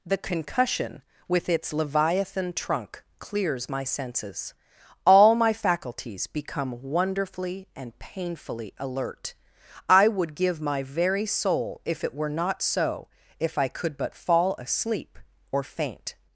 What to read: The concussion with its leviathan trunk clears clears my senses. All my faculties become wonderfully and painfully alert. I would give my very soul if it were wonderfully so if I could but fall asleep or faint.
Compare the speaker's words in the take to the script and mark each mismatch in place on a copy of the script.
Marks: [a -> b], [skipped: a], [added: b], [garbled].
The concussion with its leviathan trunk clears [skipped: clears] my senses. All my faculties become wonderfully and painfully alert. I would give my very soul if it were [wonderfully -> not] so if I could but fall asleep or faint.